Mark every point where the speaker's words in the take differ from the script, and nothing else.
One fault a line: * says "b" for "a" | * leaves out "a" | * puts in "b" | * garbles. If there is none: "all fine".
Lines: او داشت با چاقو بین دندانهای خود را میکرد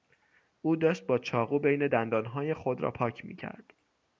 * puts in "پاک"